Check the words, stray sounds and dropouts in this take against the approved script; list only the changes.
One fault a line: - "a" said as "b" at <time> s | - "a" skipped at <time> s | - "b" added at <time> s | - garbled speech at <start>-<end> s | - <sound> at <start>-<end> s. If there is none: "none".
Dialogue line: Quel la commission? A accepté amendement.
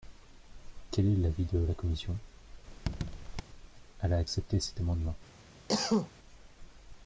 - "est l'avis de" added at 1.1 s
- squeak at 2.7-3.4 s
- "Elle" added at 4.0 s
- "cet" added at 4.6 s
- cough at 5.7-6.1 s